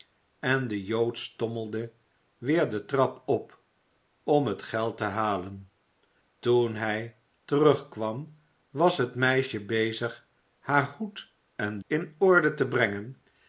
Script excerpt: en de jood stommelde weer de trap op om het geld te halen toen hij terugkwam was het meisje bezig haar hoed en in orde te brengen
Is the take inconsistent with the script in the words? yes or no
no